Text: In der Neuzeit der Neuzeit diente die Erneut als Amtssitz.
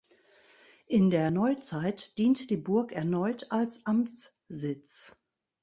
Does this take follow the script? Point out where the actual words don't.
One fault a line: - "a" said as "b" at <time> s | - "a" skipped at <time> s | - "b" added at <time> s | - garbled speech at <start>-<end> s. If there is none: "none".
- "der Neuzeit" skipped at 2.2 s
- "Burg" added at 2.6 s